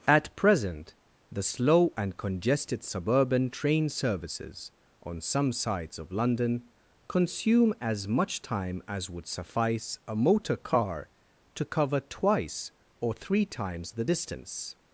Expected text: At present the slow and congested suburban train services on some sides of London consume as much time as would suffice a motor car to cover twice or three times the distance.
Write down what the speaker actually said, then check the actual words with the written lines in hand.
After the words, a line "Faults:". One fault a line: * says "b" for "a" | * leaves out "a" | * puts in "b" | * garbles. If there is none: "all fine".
At present the slow and congested suburban train services on some sides of London consume as much time as would suffice a motor car to cover twice or three times the distance.
Faults:
all fine